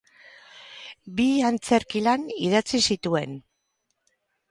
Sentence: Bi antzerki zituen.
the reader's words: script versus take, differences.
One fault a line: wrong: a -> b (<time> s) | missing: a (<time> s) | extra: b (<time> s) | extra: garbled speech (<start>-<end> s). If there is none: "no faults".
extra: lan idatzi (2.0 s)